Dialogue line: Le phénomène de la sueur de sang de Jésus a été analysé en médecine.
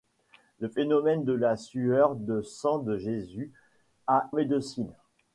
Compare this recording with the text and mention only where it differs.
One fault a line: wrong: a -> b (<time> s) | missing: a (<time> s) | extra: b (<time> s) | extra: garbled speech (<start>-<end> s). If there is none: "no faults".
missing: été analysé en (4.3 s)